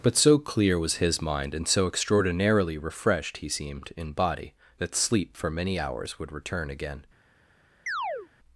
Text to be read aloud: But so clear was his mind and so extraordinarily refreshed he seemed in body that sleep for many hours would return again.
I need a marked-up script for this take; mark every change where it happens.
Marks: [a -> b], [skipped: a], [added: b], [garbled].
But so clear was his mind and so extraordinarily refreshed he seemed in body that sleep for many hours would return again.